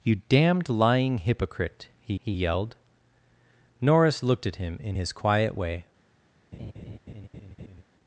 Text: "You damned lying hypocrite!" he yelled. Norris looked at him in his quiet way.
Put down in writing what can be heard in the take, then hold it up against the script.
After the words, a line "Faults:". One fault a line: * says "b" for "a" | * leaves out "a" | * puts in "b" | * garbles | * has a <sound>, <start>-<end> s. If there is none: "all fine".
"You damned lying hypocrite!" he he yelled. Norris looked at him in his quiet way.
Faults:
* puts in "he"
* has a laugh, 6.5-7.8 s